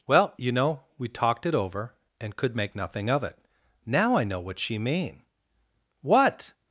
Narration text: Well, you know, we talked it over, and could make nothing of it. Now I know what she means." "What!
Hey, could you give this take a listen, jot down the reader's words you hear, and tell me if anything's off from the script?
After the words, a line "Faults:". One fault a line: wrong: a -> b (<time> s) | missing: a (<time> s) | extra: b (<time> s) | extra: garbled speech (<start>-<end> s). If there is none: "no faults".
Well, you know, we talked it over, and could make nothing of it. Now I know what she mean." "What!
Faults:
wrong: means -> mean (4.8 s)